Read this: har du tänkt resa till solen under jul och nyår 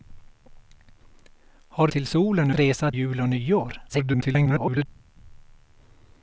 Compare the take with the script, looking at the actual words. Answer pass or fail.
fail